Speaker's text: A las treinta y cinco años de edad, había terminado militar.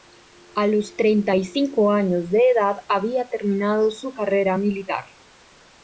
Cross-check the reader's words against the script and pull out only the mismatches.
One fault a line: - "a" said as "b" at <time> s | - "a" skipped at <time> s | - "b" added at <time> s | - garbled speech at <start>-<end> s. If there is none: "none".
- "las" said as "los" at 0.7 s
- "su carrera" added at 3.9 s